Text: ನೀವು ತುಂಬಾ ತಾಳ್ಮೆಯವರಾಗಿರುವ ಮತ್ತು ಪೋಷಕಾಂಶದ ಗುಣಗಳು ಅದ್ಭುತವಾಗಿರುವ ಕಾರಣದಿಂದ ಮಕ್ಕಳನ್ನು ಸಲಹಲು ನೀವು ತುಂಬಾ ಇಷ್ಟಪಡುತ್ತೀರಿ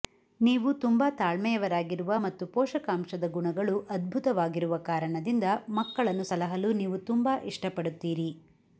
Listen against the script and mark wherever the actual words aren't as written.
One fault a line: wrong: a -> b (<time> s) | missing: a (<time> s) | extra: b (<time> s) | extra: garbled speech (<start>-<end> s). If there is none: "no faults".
no faults